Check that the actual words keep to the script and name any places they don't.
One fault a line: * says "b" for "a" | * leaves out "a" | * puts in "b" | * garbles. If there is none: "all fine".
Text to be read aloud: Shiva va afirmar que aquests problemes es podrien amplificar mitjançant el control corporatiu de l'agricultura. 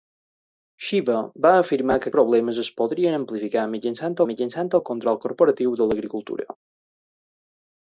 * leaves out "aquests"
* puts in "mitjançant"